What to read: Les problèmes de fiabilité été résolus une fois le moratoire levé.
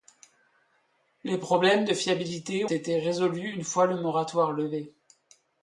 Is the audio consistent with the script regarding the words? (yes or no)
yes